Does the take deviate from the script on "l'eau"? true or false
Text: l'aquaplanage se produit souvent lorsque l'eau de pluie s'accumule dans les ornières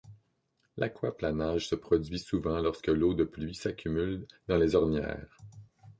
false